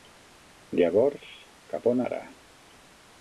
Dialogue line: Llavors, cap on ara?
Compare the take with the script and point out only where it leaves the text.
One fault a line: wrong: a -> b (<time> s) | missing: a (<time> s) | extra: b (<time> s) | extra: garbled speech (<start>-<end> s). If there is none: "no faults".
no faults